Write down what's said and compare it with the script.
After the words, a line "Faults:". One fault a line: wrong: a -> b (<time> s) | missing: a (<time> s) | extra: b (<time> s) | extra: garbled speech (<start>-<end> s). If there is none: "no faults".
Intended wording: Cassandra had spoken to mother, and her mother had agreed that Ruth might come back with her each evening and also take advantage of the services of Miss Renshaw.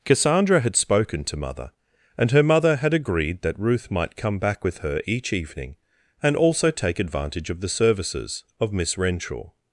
Cassandra had spoken to mother, and her mother had agreed that Ruth might come back with her each evening and also take advantage of the services of Miss Renshaw.
Faults:
no faults